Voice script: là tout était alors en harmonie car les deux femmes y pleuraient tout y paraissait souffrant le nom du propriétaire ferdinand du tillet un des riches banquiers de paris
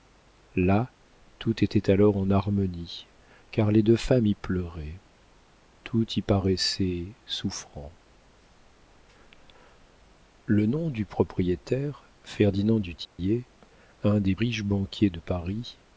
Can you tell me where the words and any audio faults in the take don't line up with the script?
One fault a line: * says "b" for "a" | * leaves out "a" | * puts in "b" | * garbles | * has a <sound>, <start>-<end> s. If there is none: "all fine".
* has a dropout, 13.0-13.2 s